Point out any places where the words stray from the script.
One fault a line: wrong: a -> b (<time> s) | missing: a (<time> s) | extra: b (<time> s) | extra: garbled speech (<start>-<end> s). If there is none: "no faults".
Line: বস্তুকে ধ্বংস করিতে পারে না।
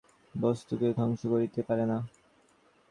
no faults